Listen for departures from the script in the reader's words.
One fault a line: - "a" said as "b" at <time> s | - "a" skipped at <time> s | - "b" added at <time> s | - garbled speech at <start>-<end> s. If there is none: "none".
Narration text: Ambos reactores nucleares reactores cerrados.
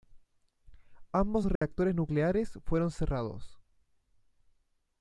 - "reactores" said as "fueron" at 2.6 s